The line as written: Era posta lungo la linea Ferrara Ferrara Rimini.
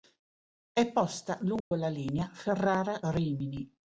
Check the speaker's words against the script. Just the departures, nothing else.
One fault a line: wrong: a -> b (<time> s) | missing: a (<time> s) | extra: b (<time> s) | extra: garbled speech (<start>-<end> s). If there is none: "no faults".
wrong: Era -> È (0.7 s)
missing: Ferrara (3.0 s)